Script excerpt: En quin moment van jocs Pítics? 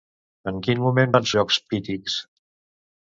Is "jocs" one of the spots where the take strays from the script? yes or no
no